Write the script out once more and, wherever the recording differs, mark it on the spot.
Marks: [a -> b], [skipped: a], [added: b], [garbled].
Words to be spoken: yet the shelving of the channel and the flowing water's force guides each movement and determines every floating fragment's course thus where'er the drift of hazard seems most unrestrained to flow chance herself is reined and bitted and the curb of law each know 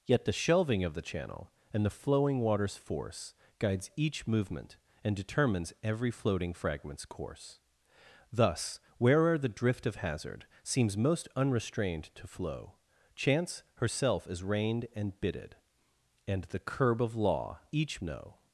yet the shelving of the channel and the flowing water's force guides each movement and determines every floating fragment's course thus where'er the drift of hazard seems most unrestrained to flow chance herself is reined and bitted and the curb of law each know